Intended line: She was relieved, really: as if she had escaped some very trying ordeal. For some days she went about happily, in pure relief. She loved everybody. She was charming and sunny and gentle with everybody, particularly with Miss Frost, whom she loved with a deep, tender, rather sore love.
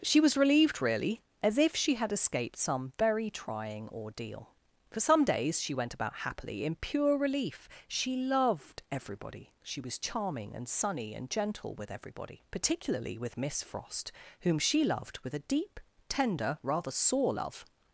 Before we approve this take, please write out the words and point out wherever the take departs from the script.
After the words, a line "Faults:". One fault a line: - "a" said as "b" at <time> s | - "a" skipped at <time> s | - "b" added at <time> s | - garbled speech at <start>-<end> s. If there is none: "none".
She was relieved, really: as if she had escaped some very trying ordeal. For some days she went about happily, in pure relief. She loved everybody. She was charming and sunny and gentle with everybody, particularly with Miss Frost, whom she loved with a deep, tender, rather sore love.
Faults:
none